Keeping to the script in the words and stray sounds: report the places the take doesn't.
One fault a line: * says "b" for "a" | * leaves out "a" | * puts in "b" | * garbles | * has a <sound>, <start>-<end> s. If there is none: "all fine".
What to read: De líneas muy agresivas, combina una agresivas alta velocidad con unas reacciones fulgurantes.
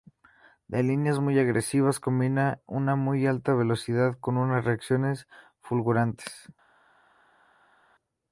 * says "muy" for "agresivas"